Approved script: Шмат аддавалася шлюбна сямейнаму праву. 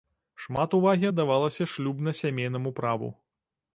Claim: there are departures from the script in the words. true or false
true